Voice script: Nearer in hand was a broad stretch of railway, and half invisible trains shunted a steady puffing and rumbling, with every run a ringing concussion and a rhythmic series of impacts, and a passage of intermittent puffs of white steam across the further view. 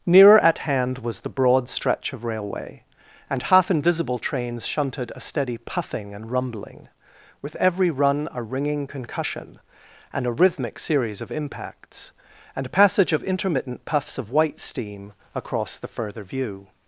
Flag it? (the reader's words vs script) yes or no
yes